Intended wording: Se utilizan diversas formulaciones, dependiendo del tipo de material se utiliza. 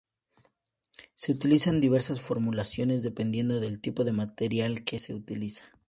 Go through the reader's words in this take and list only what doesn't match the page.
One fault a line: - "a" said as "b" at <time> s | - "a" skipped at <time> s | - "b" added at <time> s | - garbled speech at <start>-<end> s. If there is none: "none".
- "que" added at 4.8 s